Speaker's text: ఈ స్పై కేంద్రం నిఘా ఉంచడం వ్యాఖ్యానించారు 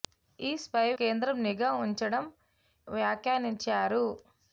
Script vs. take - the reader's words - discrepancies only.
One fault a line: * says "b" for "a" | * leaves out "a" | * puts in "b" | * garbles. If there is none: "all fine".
all fine